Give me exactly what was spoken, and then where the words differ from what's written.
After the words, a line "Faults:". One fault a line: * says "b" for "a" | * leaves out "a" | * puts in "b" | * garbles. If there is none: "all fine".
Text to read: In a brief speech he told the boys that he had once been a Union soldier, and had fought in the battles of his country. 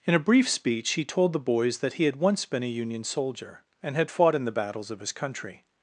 In a brief speech he told the boys that he had once been a Union soldier, and had fought in the battles of his country.
Faults:
all fine